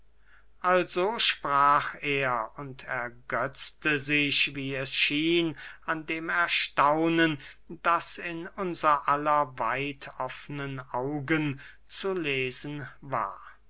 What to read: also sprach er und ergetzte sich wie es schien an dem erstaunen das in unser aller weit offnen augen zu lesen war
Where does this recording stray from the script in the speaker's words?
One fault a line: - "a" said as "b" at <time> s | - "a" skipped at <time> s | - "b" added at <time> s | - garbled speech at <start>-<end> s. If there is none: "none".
none